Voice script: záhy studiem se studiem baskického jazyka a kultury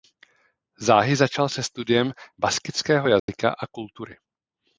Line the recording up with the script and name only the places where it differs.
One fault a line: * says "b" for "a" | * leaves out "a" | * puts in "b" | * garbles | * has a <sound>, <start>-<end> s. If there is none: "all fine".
* says "začal" for "studiem"
* has a dropout, 3.2-3.3 s